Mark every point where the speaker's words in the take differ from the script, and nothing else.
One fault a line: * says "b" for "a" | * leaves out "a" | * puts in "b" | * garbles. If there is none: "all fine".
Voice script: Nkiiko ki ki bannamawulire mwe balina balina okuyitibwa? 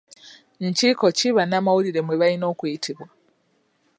* leaves out "ki"
* leaves out "balina"